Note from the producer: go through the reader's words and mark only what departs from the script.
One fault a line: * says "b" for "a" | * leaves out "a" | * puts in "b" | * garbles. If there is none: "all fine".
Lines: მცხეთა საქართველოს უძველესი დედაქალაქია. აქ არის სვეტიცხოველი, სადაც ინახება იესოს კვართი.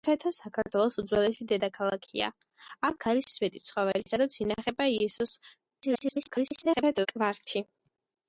* garbles